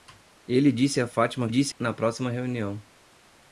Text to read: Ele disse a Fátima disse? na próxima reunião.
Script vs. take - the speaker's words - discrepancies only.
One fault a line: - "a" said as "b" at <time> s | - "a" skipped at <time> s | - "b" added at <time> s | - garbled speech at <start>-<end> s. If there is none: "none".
none